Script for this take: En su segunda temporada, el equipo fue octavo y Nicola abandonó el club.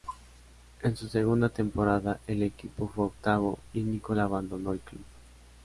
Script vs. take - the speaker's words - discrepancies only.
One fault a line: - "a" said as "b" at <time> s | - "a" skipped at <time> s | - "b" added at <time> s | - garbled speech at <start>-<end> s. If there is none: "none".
none